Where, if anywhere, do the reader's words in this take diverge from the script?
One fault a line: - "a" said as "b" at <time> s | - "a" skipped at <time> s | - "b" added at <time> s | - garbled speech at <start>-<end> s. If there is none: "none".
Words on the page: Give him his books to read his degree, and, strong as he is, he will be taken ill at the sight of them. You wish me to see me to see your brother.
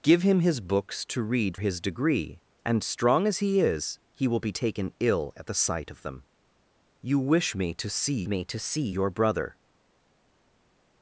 none